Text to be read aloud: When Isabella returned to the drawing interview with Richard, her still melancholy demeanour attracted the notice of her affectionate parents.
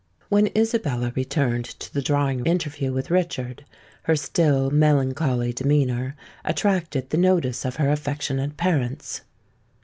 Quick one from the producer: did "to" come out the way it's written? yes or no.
yes